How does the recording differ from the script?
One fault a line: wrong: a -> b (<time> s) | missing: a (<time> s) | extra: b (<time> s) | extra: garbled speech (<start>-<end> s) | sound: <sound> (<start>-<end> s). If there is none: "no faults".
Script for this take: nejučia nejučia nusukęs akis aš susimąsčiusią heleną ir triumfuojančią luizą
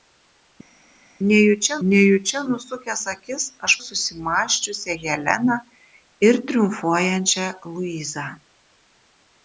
no faults